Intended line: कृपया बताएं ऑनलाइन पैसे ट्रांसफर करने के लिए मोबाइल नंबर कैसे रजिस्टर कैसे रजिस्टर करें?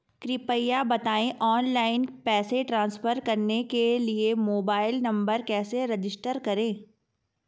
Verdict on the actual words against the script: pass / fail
fail